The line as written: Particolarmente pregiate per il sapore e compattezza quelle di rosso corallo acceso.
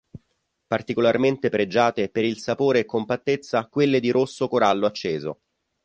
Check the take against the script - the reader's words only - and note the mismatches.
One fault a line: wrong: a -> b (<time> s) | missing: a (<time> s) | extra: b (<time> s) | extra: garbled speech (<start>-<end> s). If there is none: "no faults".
no faults